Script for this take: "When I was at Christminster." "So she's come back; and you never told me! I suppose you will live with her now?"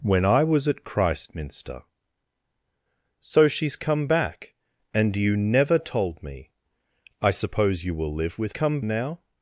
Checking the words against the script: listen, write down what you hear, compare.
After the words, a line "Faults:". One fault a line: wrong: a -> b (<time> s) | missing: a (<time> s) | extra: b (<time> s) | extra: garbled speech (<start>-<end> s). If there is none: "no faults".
"When I was at Christminster." "So she's come back; and you never told me! I suppose you will live with come now?"
Faults:
wrong: her -> come (8.5 s)